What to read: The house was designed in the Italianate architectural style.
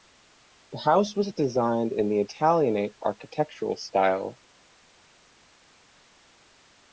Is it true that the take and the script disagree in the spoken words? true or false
false